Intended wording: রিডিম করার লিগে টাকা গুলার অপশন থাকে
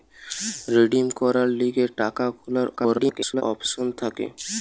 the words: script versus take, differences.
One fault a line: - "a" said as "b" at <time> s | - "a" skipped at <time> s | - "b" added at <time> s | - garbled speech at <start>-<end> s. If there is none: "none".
- garbled speech at 2.8-3.4 s